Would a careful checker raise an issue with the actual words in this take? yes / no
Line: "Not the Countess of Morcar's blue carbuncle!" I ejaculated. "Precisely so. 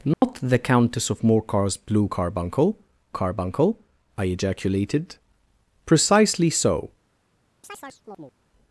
yes